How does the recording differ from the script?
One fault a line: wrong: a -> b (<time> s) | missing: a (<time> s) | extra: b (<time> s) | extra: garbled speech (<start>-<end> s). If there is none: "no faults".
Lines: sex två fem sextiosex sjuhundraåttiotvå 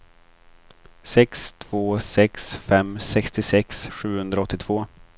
extra: sex (2.0 s)